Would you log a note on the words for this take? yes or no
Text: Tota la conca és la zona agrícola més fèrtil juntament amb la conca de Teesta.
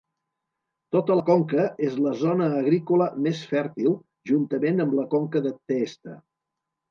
no